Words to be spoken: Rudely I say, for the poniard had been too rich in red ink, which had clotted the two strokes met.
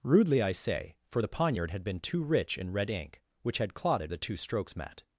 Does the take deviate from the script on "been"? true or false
false